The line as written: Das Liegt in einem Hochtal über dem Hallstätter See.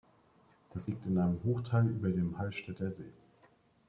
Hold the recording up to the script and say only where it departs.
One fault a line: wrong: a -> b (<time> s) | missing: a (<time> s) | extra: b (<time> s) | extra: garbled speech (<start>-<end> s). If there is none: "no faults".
no faults